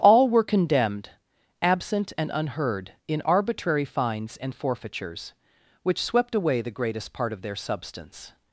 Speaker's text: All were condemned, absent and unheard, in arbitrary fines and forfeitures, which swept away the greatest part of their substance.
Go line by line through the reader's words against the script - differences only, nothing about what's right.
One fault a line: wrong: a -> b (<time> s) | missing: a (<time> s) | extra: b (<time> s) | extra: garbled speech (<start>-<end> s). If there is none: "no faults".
no faults